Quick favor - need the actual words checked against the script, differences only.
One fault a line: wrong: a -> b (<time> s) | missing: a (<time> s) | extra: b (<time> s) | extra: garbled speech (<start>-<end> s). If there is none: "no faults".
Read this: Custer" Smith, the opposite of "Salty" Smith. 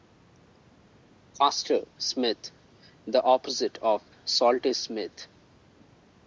no faults